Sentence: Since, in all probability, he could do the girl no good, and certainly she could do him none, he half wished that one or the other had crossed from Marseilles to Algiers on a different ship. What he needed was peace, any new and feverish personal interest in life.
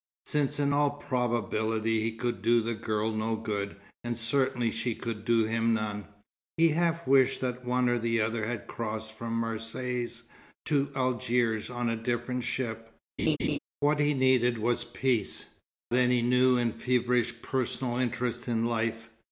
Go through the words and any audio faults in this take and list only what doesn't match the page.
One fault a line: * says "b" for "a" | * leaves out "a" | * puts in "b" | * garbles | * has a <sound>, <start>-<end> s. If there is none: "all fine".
* has a laugh, 13.2-13.6 s